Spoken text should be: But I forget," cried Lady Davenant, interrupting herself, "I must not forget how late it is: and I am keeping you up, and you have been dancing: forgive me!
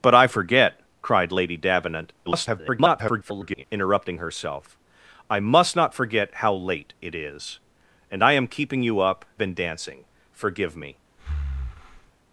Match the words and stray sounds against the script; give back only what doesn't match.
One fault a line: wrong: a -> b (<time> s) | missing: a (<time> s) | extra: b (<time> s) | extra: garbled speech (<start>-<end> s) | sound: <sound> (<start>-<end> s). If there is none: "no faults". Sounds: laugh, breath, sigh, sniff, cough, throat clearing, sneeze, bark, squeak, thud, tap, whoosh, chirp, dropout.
extra: garbled speech (2.3-3.6 s)
missing: and you have (9.2 s)
sound: breath (11.2-12.1 s)